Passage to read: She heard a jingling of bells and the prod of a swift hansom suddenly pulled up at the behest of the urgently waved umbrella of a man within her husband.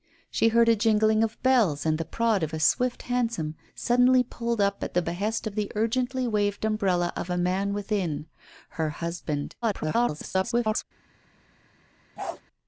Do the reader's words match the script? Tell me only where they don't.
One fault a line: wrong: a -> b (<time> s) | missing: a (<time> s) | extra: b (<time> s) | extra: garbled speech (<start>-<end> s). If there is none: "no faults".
extra: garbled speech (9.6-10.8 s)